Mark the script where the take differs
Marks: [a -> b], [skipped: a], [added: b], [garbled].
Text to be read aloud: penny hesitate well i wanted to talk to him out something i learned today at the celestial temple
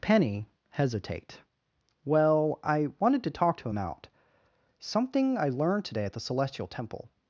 penny hesitate well i wanted to talk to him out something i learned today at the celestial temple